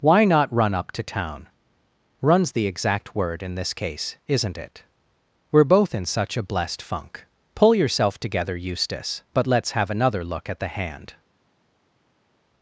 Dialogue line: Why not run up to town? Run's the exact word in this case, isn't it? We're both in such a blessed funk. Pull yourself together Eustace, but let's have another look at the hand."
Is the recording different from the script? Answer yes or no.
no